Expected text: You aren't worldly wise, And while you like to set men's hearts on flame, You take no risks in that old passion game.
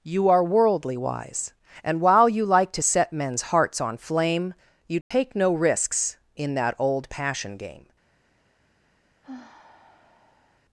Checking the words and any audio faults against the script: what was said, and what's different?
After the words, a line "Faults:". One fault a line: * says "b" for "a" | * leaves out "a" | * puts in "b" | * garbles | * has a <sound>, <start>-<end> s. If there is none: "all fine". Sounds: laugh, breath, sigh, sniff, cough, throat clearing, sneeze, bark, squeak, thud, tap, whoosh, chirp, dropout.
You are worldly wise, And while you like to set men's hearts on flame, You take no risks in that old passion game.
Faults:
* says "are" for "aren't"
* has a dropout, 5.0-5.1 s
* has a sigh, 9.2-10.6 s